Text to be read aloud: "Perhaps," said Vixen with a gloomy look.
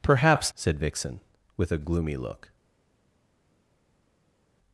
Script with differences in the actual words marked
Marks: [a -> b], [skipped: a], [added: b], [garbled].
"Perhaps," said Vixen with a gloomy look.